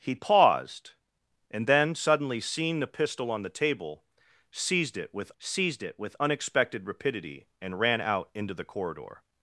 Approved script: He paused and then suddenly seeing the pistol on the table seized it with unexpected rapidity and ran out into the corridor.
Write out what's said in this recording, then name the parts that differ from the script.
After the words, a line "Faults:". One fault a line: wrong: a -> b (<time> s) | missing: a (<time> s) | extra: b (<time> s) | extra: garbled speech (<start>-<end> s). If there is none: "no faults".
He paused and then suddenly seeing the pistol on the table seized it with seized it with unexpected rapidity and ran out into the corridor.
Faults:
extra: seized it with (5.4 s)